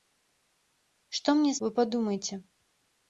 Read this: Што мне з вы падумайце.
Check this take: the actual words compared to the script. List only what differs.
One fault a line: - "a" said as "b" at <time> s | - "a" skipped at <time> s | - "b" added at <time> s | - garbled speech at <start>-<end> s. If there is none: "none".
none